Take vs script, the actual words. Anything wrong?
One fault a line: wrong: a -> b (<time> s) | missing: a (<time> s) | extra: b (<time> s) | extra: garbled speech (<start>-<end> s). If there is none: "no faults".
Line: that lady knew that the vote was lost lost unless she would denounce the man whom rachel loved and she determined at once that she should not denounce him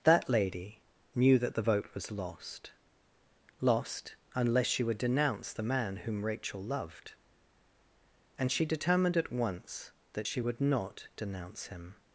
wrong: should -> would (10.4 s)